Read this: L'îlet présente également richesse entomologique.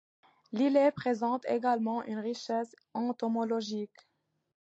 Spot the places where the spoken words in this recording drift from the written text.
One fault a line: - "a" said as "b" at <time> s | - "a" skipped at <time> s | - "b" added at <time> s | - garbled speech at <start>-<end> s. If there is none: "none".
- "une" added at 2.0 s